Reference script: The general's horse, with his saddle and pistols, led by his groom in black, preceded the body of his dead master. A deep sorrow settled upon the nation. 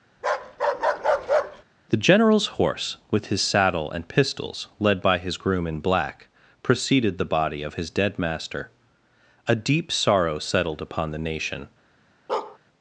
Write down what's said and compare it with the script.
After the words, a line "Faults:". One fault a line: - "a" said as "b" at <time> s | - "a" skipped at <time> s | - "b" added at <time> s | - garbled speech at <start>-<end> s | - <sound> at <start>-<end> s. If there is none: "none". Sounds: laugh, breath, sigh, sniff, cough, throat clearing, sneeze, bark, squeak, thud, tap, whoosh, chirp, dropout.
The general's horse, with his saddle and pistols, led by his groom in black, preceded the body of his dead master. A deep sorrow settled upon the nation.
Faults:
- bark at 0.2-1.6 s
- bark at 12.3-12.6 s